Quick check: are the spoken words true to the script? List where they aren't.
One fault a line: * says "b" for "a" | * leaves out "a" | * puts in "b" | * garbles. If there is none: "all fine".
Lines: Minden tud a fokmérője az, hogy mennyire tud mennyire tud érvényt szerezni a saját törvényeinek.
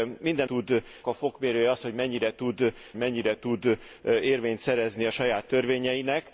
all fine